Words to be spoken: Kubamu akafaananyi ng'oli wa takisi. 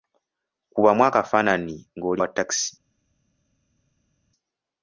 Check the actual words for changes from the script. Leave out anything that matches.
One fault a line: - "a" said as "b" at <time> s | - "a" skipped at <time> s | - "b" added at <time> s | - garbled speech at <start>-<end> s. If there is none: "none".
none